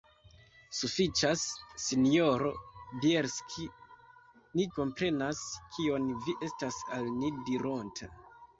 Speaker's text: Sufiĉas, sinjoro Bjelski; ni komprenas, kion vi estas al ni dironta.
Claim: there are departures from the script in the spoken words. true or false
false